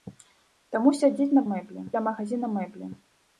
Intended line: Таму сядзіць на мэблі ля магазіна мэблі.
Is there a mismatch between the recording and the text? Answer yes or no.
no